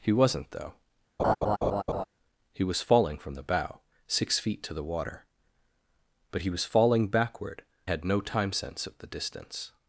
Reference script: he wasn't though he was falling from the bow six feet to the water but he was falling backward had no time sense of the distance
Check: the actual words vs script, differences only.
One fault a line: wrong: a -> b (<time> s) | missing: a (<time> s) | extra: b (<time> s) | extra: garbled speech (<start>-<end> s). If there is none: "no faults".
no faults